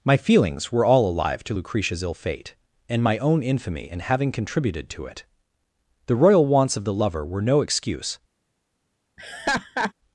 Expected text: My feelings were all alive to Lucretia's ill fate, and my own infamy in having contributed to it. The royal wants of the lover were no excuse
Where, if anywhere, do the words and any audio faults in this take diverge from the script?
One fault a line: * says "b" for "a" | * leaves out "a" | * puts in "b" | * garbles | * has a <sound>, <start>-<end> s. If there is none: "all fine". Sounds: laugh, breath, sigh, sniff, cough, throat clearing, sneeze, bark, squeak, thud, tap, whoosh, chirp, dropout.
* has a laugh, 9.2-9.9 s